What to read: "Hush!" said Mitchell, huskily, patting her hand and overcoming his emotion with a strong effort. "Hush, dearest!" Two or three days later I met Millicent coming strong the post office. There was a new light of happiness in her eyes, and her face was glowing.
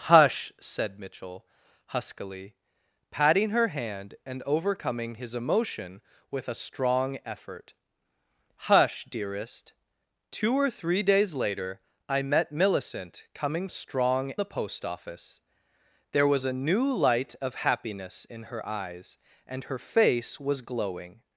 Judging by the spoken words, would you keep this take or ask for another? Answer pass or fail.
pass